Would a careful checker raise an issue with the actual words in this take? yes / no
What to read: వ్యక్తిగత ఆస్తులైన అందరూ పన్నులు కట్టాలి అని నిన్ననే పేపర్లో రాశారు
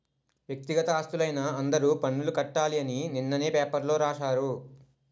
no